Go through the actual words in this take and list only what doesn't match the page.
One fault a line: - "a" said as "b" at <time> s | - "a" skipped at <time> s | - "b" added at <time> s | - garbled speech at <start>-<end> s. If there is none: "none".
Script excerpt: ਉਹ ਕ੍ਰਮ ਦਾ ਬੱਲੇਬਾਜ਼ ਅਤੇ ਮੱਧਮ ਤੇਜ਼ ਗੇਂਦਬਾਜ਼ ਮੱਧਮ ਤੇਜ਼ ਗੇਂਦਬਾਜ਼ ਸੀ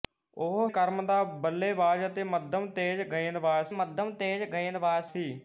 none